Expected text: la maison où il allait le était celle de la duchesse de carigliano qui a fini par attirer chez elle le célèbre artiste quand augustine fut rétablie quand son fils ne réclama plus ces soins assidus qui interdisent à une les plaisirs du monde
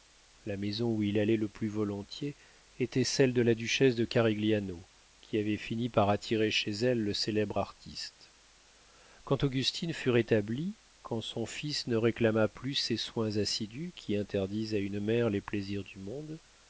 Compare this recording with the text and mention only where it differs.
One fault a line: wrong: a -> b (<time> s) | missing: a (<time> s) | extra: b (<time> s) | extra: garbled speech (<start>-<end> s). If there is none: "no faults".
extra: plus volontiers (1.5 s)
wrong: a -> avait (5.4 s)
extra: mère (15.0 s)